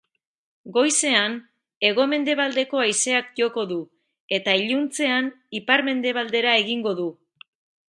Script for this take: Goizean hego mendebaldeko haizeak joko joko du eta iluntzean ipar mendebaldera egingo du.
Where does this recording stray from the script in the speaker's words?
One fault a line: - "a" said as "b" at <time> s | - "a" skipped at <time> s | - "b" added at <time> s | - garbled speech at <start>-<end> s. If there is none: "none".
- "joko" skipped at 3.7 s